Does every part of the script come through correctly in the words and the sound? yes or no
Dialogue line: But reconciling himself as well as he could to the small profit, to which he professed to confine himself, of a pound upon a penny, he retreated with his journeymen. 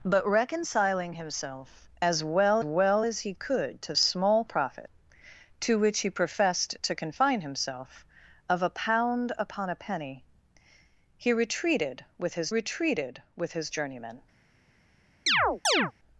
no